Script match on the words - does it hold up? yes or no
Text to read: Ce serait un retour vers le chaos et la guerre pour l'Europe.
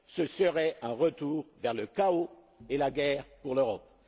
yes